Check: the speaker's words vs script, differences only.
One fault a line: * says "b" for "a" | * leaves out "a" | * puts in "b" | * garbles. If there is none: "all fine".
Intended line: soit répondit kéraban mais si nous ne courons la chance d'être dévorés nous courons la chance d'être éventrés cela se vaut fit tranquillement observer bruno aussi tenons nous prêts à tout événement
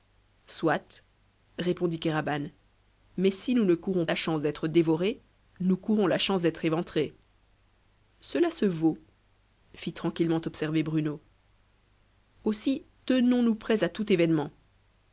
all fine